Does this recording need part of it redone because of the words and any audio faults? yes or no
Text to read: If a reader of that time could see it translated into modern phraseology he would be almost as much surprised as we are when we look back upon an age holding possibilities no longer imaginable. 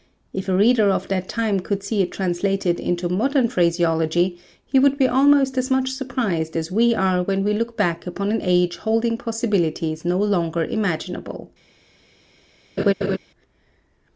yes